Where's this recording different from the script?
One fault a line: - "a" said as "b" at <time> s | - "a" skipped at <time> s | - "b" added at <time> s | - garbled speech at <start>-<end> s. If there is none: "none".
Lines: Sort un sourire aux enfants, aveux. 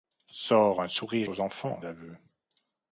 none